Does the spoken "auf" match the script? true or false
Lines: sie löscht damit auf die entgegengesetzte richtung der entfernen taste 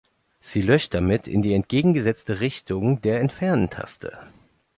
false